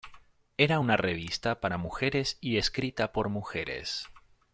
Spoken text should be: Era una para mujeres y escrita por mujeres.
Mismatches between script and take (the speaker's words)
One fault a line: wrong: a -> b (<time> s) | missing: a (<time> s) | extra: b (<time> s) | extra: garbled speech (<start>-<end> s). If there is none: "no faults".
extra: revista (1.0 s)